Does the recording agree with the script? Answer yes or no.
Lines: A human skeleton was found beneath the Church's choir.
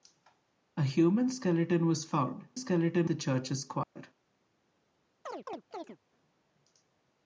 no